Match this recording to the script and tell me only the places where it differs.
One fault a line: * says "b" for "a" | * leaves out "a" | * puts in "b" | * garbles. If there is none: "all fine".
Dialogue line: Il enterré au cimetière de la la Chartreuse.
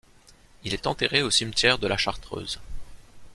* puts in "est"
* leaves out "la"